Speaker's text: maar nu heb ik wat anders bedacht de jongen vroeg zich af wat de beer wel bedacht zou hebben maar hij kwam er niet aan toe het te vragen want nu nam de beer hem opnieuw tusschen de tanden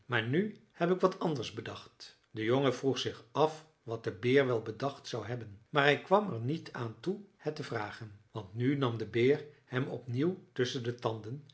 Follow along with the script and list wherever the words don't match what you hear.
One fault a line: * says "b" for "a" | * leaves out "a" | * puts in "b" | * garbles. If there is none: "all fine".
all fine